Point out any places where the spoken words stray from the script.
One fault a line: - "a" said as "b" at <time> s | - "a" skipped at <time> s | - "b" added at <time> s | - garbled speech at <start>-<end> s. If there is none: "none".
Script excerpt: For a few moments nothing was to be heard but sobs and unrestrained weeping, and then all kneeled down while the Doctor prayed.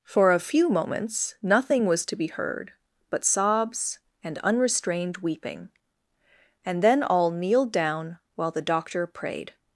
none